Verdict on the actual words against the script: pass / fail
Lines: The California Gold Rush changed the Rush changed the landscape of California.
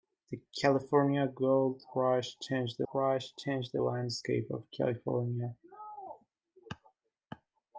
pass